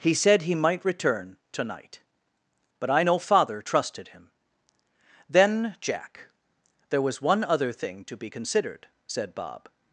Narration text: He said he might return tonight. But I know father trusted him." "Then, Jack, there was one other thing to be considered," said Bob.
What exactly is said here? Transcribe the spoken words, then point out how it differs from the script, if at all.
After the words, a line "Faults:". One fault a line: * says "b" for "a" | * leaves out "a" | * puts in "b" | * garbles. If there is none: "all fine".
He said he might return tonight. But I know father trusted him." "Then, Jack, there was one other thing to be considered," said Bob.
Faults:
all fine